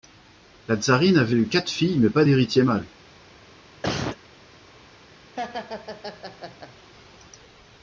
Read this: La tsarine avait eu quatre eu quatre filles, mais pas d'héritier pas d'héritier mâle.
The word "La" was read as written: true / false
true